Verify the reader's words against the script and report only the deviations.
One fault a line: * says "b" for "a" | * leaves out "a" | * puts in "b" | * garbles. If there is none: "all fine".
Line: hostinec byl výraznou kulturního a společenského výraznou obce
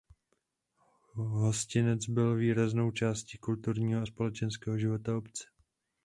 * puts in "částí"
* says "života" for "výraznou"